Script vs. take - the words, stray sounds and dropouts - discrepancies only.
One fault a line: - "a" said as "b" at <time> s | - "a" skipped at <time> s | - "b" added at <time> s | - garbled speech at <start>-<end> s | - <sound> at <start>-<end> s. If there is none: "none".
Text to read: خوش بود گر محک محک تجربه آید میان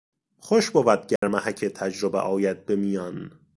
- dropout at 1.2-1.2 s
- "محک" skipped at 1.7 s
- "به" added at 2.7 s